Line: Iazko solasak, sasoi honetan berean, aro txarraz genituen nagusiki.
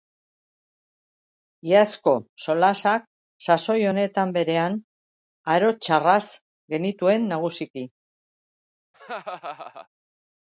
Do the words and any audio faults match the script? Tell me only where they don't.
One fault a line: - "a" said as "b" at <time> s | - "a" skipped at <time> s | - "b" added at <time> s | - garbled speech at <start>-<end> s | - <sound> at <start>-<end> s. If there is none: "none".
- laugh at 8.9-9.9 s